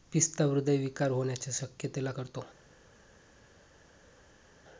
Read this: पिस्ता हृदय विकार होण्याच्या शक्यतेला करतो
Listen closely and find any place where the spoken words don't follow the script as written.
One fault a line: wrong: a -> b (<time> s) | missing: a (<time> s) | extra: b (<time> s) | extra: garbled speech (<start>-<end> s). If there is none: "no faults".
no faults